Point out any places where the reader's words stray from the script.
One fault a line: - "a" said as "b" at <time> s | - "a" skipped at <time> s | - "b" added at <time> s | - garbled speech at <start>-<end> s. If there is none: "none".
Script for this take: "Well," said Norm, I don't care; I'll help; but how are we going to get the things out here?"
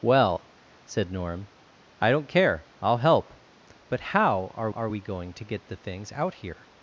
- "are" added at 4.7 s